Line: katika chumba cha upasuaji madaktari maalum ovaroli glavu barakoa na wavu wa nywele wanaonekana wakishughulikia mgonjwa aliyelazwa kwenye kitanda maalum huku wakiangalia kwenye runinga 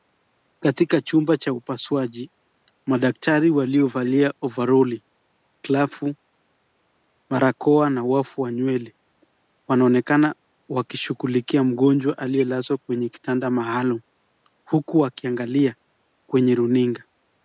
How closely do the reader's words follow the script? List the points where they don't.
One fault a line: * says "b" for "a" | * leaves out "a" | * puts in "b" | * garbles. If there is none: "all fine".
* says "waliovalia" for "maalum"